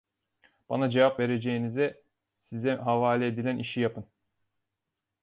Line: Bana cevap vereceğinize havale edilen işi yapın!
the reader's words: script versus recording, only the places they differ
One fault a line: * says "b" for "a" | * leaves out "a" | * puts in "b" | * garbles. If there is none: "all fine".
* puts in "size"